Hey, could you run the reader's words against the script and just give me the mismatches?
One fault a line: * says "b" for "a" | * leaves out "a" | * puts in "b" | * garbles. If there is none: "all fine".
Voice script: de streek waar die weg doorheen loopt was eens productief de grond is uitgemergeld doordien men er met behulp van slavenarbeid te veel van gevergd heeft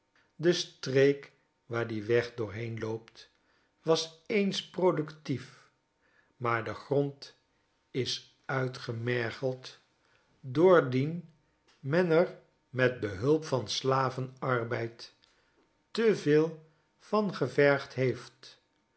* puts in "maar"